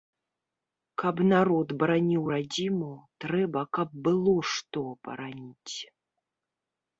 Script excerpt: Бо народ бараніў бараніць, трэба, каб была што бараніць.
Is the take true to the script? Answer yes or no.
no